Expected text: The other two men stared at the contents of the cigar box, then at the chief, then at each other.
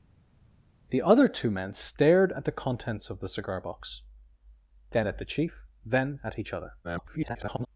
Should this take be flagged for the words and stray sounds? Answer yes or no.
yes